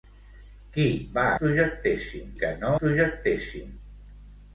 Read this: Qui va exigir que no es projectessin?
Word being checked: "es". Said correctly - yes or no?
no